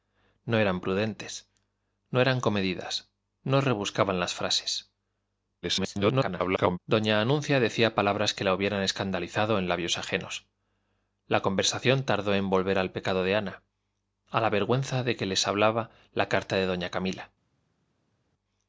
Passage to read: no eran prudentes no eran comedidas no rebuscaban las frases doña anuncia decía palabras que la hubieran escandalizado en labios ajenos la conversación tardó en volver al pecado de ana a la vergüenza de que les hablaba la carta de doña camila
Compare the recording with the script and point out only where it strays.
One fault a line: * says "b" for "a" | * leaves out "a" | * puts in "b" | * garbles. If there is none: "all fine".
* garbles